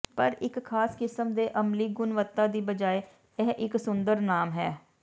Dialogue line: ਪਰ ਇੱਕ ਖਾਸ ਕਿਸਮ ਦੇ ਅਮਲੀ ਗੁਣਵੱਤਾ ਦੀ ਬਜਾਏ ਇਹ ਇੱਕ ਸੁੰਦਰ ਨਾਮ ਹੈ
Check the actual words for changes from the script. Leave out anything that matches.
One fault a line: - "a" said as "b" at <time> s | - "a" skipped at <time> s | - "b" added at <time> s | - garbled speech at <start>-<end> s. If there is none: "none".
none